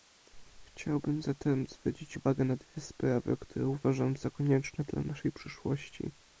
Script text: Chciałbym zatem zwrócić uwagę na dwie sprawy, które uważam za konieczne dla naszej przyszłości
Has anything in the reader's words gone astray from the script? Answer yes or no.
no